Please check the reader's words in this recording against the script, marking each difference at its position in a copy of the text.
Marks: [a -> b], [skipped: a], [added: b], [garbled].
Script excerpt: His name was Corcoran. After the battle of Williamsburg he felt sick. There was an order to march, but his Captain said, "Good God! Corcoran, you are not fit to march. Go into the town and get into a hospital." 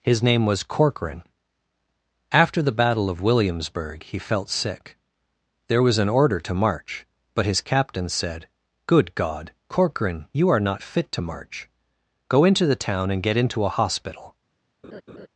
His name was Corcoran. After the battle of Williamsburg he felt sick. There was an order to march, but his Captain said, "Good God! Corcoran, you are not fit to march. Go into the town and get into a hospital."